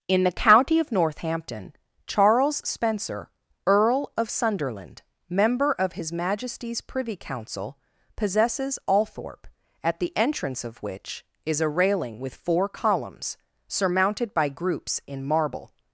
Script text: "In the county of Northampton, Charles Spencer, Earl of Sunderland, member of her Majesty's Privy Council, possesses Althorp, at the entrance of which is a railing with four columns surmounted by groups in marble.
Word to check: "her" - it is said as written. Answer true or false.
false